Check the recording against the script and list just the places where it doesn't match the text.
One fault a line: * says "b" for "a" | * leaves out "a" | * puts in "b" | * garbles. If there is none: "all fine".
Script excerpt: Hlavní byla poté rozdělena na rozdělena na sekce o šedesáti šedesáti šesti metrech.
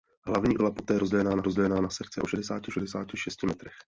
all fine